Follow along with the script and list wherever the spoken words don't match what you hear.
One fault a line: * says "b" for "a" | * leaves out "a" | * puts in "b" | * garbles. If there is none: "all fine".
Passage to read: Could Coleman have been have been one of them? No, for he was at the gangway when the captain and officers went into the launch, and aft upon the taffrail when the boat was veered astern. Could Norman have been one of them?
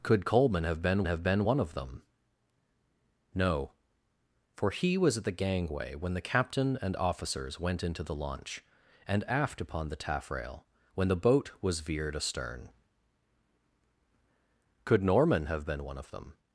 all fine